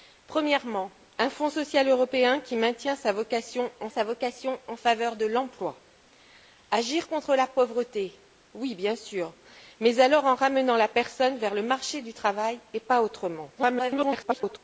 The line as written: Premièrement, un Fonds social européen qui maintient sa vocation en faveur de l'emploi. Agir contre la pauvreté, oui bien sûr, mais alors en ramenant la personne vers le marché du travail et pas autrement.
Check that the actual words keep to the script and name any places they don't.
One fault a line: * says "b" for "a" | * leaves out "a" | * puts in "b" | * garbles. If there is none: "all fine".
* puts in "sa vocation en"
* garbles